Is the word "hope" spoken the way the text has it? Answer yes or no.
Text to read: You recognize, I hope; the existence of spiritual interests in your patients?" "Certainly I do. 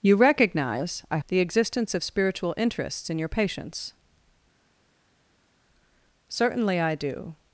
no